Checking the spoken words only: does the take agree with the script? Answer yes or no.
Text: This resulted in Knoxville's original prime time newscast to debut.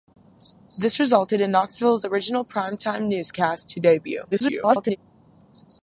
no